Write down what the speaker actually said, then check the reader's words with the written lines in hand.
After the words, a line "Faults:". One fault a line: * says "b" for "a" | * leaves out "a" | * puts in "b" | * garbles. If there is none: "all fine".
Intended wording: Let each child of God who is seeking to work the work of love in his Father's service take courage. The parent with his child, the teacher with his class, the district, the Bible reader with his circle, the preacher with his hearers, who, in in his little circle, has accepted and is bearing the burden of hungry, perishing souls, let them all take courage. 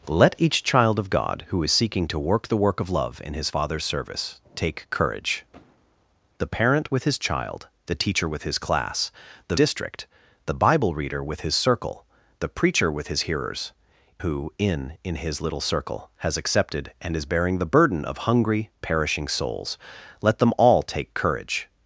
Let each child of God who is seeking to work the work of love in his Father's service take courage. The parent with his child, the teacher with his class, the district, the Bible reader with his circle, the preacher with his hearers, who, in in his little circle, has accepted and is bearing the burden of hungry, perishing souls, let them all take courage.
Faults:
all fine